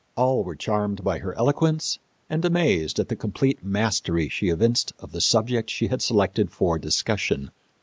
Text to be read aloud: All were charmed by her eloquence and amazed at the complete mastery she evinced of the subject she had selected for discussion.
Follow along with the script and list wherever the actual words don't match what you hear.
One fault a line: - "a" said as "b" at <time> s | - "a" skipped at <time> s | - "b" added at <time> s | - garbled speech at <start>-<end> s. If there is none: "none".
none